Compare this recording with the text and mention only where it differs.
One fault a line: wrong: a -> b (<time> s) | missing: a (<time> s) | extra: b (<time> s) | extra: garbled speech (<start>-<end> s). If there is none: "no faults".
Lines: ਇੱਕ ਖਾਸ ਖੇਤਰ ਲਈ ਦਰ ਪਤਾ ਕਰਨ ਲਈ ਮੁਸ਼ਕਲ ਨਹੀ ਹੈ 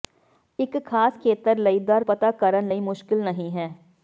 no faults